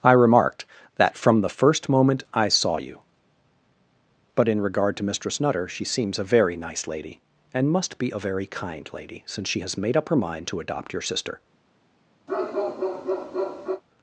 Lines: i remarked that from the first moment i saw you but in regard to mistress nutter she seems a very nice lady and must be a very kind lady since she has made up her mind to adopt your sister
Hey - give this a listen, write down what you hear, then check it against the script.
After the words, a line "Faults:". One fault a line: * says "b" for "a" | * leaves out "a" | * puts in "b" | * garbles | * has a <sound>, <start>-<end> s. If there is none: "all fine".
i remarked that from the first moment i saw you but in regard to mistress nutter she seems a very nice lady and must be a very kind lady since she has made up her mind to adopt your sister
Faults:
* has a bark, 12.3-13.8 s